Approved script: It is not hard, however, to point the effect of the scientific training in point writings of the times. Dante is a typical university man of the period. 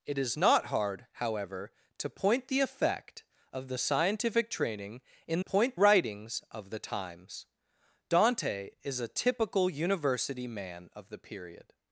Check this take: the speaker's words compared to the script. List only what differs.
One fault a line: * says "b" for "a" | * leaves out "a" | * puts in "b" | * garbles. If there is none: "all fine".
all fine